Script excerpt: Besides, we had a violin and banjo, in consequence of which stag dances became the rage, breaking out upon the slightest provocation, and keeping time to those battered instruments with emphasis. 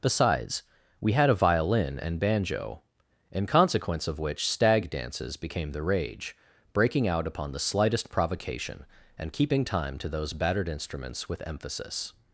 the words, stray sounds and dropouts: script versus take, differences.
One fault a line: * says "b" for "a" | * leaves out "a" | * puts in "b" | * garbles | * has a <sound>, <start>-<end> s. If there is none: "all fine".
all fine